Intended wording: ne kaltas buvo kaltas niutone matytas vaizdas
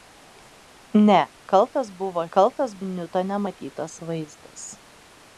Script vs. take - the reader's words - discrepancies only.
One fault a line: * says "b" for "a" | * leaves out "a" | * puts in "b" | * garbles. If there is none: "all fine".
all fine